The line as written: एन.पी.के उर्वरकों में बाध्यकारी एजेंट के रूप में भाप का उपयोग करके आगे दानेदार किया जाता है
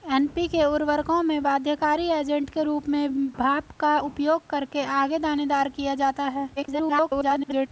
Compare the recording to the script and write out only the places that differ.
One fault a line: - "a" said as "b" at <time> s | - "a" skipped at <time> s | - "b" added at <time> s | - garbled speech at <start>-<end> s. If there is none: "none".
- garbled speech at 6.6-7.7 s